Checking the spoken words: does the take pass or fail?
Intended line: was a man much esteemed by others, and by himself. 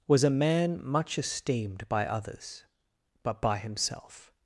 fail